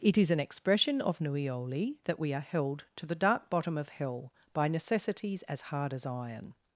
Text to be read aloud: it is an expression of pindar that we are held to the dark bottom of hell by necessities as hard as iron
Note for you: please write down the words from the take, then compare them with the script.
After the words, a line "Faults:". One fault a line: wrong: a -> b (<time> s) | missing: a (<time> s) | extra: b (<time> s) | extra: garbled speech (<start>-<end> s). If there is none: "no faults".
it is an expression of nuioli that we are held to the dark bottom of hell by necessities as hard as iron
Faults:
wrong: pindar -> nuioli (1.2 s)